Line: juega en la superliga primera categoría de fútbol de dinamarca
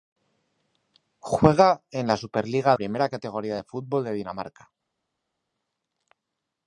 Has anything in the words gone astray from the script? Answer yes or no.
no